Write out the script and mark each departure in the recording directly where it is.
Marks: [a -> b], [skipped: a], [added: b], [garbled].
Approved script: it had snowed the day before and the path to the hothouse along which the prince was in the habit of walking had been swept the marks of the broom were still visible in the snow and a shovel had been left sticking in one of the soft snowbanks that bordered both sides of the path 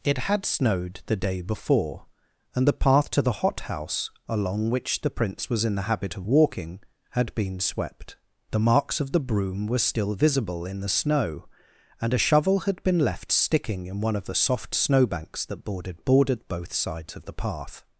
it had snowed the day before and the path to the hothouse along which the prince was in the habit of walking had been swept the marks of the broom were still visible in the snow and a shovel had been left sticking in one of the soft snowbanks that bordered [added: bordered] both sides of the path